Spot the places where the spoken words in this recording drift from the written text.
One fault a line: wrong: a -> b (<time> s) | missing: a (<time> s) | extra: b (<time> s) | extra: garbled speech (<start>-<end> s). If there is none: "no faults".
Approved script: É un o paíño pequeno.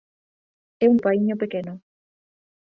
no faults